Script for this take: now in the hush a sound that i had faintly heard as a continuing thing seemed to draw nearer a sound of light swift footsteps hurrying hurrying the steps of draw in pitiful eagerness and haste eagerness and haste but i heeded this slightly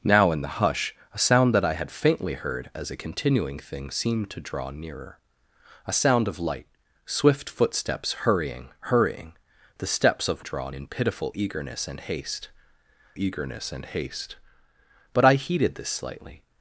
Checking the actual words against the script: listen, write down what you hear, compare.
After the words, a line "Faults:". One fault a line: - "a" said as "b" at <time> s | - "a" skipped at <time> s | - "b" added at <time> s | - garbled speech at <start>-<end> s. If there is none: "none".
now in the hush a sound that i had faintly heard as a continuing thing seemed to draw nearer a sound of light swift footsteps hurrying hurrying the steps of draw in pitiful eagerness and haste eagerness and haste but i heeded this slightly
Faults:
none